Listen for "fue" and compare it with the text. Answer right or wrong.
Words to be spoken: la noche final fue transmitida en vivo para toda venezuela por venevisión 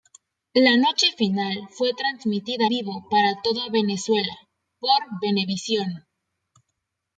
right